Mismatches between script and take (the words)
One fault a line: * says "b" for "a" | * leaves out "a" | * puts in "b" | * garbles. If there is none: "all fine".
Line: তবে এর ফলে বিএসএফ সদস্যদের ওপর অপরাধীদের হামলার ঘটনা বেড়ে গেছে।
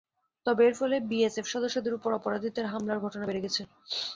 all fine